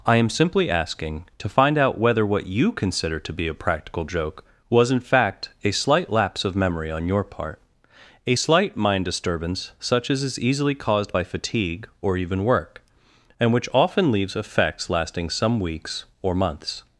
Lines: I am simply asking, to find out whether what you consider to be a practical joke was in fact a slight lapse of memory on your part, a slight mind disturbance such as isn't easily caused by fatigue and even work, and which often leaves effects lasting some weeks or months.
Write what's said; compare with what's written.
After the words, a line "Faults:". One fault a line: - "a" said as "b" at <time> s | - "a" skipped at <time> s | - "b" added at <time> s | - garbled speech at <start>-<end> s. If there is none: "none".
I am simply asking, to find out whether what you consider to be a practical joke was in fact a slight lapse of memory on your part, a slight mind disturbance such as is easily caused by fatigue or even work, and which often leaves effects lasting some weeks or months.
Faults:
- "isn't" said as "is" at 10.2 s
- "and" said as "or" at 12.0 s